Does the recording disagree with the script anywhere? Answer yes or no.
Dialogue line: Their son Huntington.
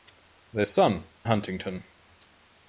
no